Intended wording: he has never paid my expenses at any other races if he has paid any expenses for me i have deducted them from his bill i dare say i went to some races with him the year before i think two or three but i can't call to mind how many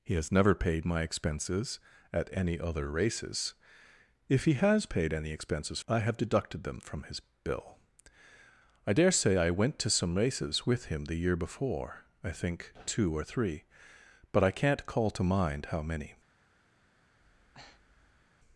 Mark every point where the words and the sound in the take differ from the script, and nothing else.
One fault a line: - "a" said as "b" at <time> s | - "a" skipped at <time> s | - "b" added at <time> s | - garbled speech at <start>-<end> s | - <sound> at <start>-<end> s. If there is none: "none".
- "for me" skipped at 5.8 s
- breath at 17.2-18.3 s